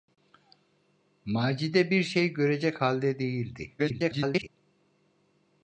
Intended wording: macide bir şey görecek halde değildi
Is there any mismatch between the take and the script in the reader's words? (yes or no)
yes